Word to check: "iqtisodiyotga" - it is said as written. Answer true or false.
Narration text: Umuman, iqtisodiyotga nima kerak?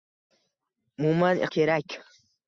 false